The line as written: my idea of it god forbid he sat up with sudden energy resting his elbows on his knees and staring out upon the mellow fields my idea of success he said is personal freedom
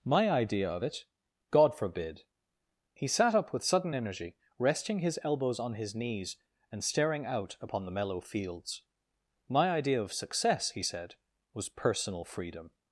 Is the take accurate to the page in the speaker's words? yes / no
no